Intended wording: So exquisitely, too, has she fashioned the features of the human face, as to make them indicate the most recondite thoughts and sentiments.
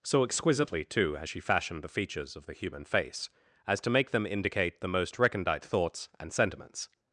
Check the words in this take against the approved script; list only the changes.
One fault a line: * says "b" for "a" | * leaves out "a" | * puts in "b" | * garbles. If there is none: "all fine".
all fine